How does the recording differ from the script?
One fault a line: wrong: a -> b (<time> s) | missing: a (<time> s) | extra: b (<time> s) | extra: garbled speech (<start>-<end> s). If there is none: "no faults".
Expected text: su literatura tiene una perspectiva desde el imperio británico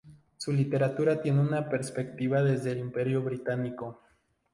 missing: el (2.7 s)